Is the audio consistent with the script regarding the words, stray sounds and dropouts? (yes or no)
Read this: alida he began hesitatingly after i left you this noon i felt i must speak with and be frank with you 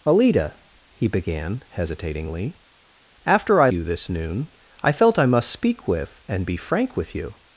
no